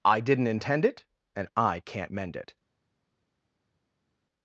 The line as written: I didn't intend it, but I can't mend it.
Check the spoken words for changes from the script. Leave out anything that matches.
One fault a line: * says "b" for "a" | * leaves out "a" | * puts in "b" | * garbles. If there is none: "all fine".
* says "and" for "but"